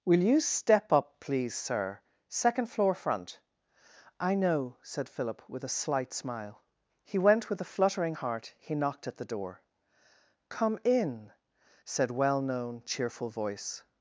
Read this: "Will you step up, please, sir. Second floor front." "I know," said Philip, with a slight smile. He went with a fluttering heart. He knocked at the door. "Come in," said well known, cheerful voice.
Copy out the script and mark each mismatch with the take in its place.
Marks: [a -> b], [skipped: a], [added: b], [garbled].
"Will you step up, please, sir. Second floor front." "I know," said Philip, with a slight smile. He went with a fluttering heart. He knocked at the door. "Come in," said well known, cheerful voice.